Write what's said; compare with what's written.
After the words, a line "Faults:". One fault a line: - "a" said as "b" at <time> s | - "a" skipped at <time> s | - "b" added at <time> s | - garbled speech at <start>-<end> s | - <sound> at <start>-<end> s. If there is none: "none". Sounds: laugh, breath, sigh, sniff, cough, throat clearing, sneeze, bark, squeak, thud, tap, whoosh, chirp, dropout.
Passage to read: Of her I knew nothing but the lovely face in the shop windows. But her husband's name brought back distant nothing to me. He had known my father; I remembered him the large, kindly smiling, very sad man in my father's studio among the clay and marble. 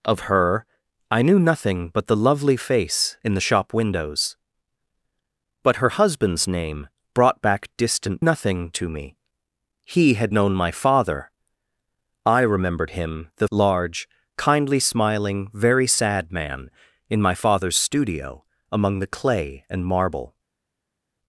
Of her I knew nothing but the lovely face in the shop windows. But her husband's name brought back distant nothing to me. He had known my father; I remembered him the large, kindly smiling, very sad man in my father's studio among the clay and marble.
Faults:
none